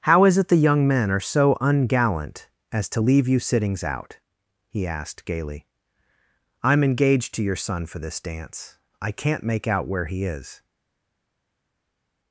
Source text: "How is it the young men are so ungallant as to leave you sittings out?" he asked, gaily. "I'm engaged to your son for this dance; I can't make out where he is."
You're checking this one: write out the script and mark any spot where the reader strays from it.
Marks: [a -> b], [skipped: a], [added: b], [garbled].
"How is it the young men are so ungallant as to leave you sittings out?" he asked, gaily. "I'm engaged to your son for this dance; I can't make out where he is."